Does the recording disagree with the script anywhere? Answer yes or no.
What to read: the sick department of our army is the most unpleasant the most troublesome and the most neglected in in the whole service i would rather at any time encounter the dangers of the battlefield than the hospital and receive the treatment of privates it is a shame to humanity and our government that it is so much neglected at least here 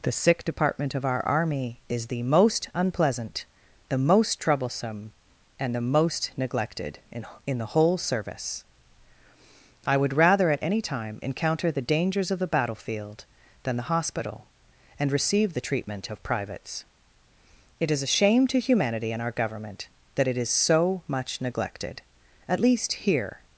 no